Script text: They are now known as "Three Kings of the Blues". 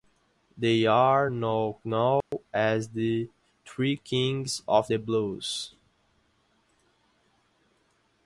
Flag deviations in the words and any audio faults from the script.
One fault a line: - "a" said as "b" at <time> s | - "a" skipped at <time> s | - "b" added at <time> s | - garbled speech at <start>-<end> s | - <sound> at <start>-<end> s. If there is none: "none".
- dropout at 2.2-2.3 s
- "the" added at 2.9 s